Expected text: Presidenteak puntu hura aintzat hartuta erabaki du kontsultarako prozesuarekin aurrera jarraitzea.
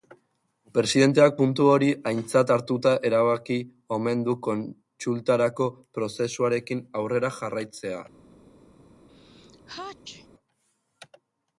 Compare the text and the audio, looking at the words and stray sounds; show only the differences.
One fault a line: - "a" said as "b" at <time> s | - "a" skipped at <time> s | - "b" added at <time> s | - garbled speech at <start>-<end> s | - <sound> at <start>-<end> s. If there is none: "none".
- "hura" said as "hori" at 1.7 s
- "omen" added at 4.0 s
- sneeze at 9.1-10.3 s